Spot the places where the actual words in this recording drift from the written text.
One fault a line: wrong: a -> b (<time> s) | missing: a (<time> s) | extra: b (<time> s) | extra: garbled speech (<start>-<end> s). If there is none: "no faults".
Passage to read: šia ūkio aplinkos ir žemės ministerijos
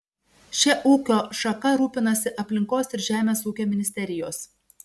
extra: šaka rūpinasi (1.4 s)
extra: ūkio (3.5 s)